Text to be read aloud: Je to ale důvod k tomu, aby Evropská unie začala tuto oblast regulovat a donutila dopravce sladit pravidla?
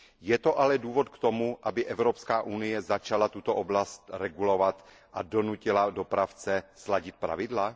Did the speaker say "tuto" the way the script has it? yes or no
yes